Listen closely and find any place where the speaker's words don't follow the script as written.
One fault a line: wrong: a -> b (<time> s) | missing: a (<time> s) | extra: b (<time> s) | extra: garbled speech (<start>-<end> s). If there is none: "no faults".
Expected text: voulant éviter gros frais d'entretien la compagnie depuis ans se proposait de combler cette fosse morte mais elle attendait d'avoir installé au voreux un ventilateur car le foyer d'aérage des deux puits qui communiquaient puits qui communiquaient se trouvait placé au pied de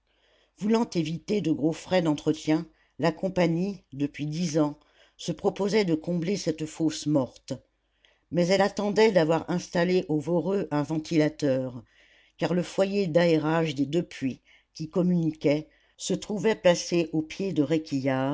extra: de (1.4 s)
extra: dix (4.3 s)
missing: puits qui communiquaient (15.7 s)